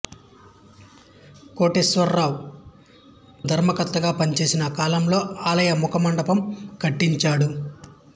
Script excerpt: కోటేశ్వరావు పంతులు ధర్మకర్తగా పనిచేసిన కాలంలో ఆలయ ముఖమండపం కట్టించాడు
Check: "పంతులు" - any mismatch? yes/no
yes